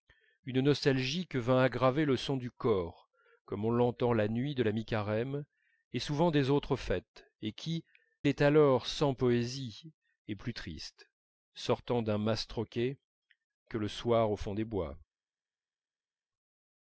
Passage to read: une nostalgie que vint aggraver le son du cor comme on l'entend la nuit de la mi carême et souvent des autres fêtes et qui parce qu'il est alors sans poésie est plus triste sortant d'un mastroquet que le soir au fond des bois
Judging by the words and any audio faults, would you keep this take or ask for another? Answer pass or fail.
fail